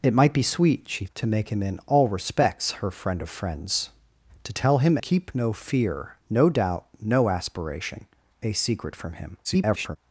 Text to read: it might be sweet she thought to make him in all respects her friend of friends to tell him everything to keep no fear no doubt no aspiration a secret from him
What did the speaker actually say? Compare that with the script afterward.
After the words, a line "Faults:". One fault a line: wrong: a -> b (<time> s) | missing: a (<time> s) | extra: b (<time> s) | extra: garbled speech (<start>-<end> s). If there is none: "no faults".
it might be sweet she to make him in all respects her friend of friends to tell him keep no fear no doubt no aspiration a secret from him [garbled]
Faults:
missing: thought (1.1 s)
missing: everything to (5.0 s)
extra: garbled speech (9.4-10.0 s)